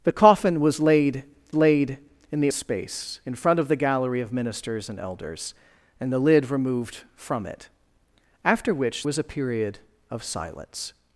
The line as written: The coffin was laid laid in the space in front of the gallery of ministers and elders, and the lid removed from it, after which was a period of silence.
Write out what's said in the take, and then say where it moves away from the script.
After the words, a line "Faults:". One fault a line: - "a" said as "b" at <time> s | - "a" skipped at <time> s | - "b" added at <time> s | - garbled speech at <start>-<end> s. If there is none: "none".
The coffin was laid laid in the space in front of the gallery of ministers and elders, and the lid removed from it, after which was a period of silence.
Faults:
none